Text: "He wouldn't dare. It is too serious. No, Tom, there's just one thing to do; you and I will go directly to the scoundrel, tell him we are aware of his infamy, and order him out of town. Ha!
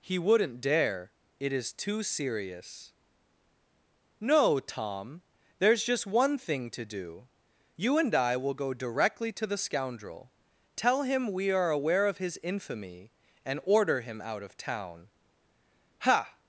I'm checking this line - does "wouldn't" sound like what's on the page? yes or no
yes